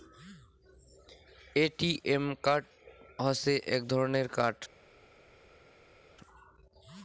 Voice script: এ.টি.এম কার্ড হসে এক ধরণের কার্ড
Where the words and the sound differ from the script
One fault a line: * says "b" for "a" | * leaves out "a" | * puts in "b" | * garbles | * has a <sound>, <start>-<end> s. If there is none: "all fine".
all fine